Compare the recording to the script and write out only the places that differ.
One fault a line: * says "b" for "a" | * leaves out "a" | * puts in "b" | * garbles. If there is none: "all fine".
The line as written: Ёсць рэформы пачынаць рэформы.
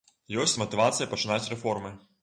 * says "матывацыя" for "рэформы"